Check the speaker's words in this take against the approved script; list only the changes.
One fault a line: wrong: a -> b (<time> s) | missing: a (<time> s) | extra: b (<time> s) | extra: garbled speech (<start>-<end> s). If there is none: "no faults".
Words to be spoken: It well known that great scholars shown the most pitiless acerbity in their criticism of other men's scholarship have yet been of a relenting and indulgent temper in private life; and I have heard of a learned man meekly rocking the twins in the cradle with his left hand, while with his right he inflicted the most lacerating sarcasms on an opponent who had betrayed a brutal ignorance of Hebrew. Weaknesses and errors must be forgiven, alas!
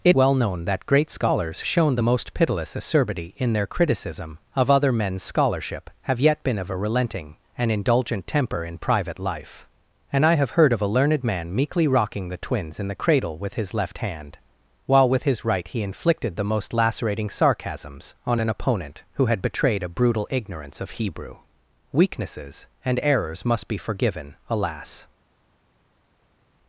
no faults